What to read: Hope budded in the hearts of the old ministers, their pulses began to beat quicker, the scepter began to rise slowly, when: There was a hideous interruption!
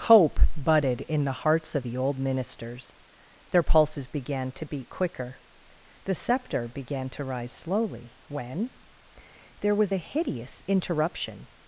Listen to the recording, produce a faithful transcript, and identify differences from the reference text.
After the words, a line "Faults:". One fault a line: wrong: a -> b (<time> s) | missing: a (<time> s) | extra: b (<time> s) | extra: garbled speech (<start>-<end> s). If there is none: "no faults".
Hope budded in the hearts of the old ministers, their pulses began to beat quicker, the scepter began to rise slowly, when: There was a hideous interruption!
Faults:
no faults